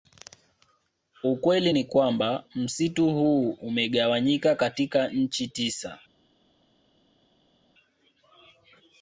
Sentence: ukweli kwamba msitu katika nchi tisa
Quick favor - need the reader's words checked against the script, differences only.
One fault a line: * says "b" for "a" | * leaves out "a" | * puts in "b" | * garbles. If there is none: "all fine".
* puts in "ni"
* puts in "huu umegawanyika"